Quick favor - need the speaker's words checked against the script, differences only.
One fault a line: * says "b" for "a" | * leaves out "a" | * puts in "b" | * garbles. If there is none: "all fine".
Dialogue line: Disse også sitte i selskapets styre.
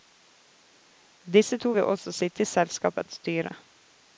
* puts in "to vil"